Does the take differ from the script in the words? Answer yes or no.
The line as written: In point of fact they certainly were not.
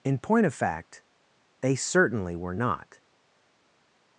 no